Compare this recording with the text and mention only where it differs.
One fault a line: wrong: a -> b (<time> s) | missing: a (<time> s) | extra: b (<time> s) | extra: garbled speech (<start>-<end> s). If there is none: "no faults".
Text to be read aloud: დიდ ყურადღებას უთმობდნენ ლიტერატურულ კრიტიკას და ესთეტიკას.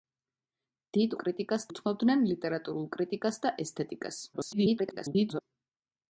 wrong: ყურადღებას -> კრიტიკას (1.2 s)
extra: garbled speech (4.3-5.4 s)